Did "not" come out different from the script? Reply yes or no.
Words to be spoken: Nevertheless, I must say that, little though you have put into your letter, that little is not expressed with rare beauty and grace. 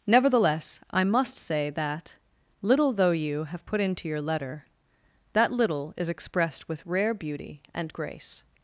yes